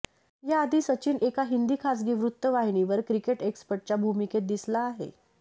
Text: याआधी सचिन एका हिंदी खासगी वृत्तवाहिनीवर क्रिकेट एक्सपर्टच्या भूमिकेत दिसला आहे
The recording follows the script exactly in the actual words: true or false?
true